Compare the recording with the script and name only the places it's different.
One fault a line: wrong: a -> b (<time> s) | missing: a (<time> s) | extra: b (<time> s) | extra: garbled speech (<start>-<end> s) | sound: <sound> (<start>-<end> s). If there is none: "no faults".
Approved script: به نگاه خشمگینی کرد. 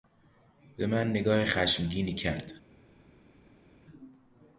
extra: من (0.9 s)